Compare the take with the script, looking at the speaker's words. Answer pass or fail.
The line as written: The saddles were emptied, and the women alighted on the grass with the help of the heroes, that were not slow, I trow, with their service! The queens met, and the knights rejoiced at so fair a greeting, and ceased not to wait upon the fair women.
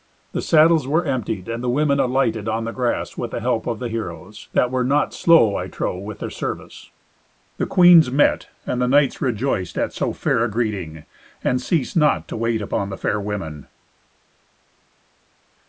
pass